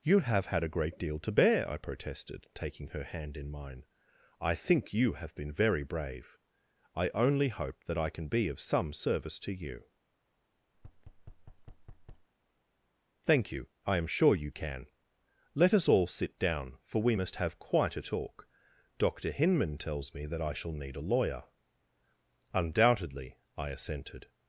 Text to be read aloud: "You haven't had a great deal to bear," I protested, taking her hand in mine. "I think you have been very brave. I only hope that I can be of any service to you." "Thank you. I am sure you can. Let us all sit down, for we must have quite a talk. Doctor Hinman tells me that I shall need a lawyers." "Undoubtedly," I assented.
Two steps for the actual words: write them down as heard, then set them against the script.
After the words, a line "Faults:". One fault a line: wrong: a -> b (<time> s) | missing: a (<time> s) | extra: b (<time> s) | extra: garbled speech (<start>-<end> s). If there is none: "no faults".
"You have had a great deal to bear," I protested, taking her hand in mine. "I think you have been very brave. I only hope that I can be of some service to you." "Thank you. I am sure you can. Let us all sit down, for we must have quite a talk. Doctor Hinman tells me that I shall need a lawyer." "Undoubtedly," I assented.
Faults:
wrong: haven't -> have (0.2 s)
wrong: any -> some (8.6 s)
wrong: lawyers -> lawyer (21.1 s)